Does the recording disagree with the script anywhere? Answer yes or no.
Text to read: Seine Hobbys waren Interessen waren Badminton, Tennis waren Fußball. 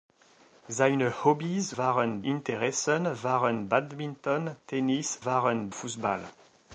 no